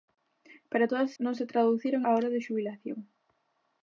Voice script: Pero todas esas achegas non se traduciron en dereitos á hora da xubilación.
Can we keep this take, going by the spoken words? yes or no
no